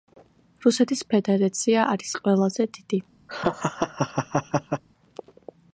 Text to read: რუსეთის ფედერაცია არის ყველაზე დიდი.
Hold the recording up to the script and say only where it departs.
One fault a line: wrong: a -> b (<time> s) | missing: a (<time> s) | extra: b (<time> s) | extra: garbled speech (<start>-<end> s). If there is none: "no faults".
no faults